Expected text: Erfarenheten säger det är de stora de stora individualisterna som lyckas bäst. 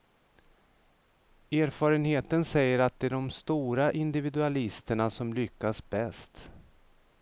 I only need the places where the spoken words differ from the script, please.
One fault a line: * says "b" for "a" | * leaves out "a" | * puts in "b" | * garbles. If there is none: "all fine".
* puts in "att"
* leaves out "de stora"